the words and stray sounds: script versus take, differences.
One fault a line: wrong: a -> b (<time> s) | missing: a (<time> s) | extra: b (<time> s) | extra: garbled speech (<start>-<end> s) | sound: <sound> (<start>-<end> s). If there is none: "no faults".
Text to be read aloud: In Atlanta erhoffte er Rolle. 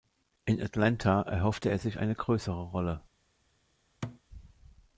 extra: sich eine größere (1.8 s)
sound: thud (4.0-4.2 s)